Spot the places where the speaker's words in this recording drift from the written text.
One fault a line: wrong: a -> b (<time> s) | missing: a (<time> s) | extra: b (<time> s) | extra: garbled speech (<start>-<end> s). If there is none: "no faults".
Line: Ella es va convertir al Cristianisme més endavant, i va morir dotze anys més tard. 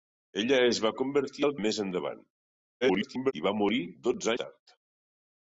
missing: Cristianisme (1.5 s)
extra: garbled speech (2.8-3.3 s)
missing: anys més (4.3 s)